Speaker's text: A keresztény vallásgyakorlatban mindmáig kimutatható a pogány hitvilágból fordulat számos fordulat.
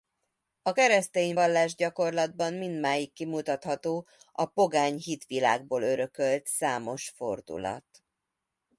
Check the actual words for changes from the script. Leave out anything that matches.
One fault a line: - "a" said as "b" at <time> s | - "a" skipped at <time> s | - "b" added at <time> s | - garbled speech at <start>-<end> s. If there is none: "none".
- "fordulat" said as "örökölt" at 5.8 s